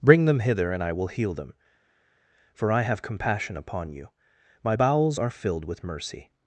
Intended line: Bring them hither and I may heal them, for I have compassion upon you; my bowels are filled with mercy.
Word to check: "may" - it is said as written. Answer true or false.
false